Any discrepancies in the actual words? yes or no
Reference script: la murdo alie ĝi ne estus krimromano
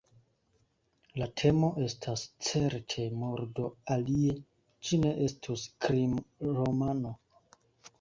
yes